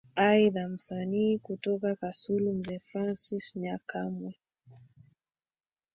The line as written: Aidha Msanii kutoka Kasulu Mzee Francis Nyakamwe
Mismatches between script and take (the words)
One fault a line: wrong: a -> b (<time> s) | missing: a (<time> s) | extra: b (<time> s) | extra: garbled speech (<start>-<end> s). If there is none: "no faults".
no faults